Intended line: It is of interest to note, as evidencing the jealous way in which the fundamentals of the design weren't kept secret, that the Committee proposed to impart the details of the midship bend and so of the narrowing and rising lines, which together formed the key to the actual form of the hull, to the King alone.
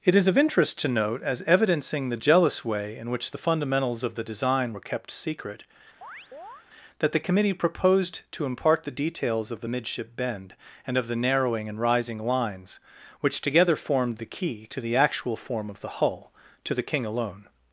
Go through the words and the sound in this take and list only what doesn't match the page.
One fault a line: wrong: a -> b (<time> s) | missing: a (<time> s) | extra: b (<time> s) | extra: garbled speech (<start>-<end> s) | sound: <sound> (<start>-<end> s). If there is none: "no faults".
wrong: weren't -> were (4.7 s)
sound: chirp (6.0-6.7 s)
missing: so (11.0 s)